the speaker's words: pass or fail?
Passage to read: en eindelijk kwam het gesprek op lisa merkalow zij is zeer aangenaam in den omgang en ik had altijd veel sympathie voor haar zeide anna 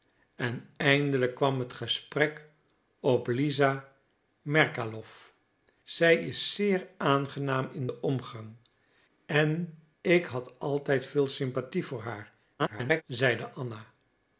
fail